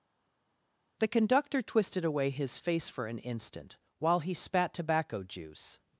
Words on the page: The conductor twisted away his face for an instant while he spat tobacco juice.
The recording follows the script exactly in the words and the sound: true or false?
true